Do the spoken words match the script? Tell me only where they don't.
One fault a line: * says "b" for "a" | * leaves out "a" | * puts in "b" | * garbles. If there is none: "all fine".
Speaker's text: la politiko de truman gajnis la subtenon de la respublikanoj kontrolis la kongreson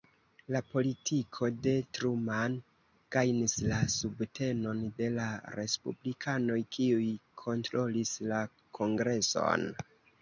* puts in "kiuj"